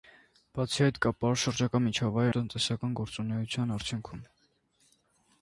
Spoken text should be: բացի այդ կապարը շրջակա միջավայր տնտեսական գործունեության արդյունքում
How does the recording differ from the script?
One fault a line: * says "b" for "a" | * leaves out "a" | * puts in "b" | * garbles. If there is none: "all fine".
all fine